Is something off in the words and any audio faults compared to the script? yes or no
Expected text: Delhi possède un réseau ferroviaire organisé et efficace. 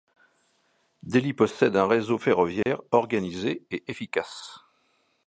yes